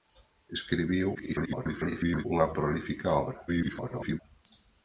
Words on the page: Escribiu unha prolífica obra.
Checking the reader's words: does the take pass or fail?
fail